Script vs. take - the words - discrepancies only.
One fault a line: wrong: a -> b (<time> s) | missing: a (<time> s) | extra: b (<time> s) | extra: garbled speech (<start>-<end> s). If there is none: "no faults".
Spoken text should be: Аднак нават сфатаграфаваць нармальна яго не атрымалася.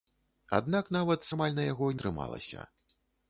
missing: сфатаграфаваць (1.3 s)
missing: не (2.0 s)